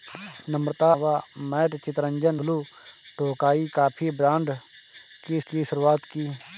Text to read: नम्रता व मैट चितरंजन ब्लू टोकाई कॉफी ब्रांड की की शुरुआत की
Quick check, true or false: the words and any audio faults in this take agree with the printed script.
true